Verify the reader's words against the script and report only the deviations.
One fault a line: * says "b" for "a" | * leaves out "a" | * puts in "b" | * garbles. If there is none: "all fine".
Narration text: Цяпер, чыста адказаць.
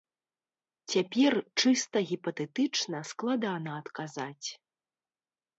* puts in "гіпатэтычна складана"